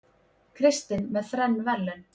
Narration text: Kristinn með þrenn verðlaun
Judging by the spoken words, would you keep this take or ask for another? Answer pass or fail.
pass